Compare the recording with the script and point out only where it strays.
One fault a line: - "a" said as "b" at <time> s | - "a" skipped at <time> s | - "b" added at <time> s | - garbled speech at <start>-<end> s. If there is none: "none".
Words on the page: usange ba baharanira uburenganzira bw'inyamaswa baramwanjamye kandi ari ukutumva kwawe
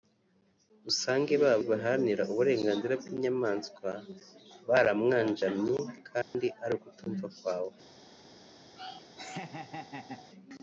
none